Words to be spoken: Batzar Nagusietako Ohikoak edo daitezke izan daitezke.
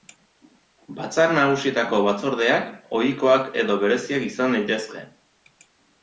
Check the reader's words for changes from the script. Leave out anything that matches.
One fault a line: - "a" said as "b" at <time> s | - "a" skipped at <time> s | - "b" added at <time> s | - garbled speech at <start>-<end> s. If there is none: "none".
- "Batzordeak" added at 2.1 s
- "daitezke" said as "bereziak" at 3.9 s